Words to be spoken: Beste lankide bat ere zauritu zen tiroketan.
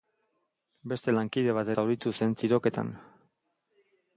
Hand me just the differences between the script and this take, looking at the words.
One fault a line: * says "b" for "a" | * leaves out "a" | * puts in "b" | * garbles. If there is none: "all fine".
* leaves out "ere"